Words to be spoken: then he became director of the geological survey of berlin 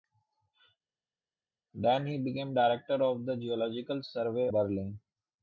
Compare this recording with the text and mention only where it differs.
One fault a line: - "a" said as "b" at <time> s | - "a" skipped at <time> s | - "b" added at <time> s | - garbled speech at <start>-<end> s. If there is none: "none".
- "of" skipped at 4.5 s